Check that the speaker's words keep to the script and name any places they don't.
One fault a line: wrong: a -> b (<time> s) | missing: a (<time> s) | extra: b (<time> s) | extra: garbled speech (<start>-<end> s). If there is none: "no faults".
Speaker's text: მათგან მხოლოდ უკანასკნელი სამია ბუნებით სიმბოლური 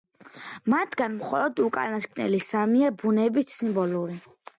no faults